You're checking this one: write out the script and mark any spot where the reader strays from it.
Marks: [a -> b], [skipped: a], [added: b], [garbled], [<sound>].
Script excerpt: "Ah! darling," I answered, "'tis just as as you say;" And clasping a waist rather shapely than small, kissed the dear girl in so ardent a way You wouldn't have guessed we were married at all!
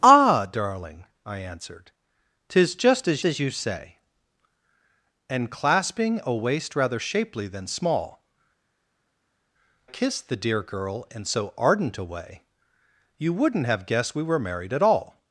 "Ah! darling," I answered, "'tis just as as you say;" And clasping a waist rather shapely than small, kissed the dear girl in so ardent a way You wouldn't have guessed we were married at all!